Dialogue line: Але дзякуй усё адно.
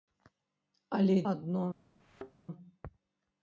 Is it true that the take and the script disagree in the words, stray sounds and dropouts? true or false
true